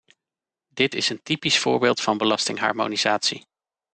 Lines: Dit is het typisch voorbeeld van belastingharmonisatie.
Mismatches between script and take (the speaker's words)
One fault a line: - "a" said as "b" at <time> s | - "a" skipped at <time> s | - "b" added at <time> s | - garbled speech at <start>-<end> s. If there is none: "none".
- "het" said as "een" at 1.1 s